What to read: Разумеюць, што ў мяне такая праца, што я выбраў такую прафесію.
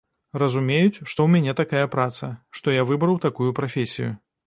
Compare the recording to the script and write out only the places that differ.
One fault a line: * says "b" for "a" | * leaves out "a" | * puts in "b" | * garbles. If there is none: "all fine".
all fine